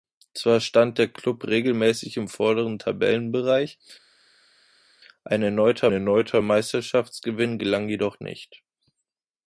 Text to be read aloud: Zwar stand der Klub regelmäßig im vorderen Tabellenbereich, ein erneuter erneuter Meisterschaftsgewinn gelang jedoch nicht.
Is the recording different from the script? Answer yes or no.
no